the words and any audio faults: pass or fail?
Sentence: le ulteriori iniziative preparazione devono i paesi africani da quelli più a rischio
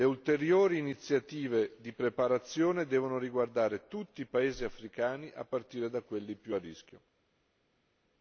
fail